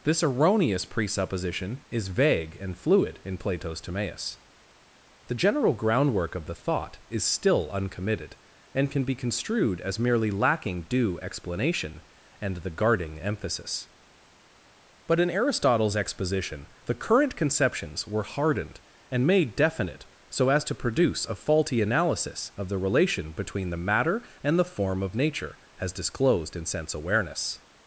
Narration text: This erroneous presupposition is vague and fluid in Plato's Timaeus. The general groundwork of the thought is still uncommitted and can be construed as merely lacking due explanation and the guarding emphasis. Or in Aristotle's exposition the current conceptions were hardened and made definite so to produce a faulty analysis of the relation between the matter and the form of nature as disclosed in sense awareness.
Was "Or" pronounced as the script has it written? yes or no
no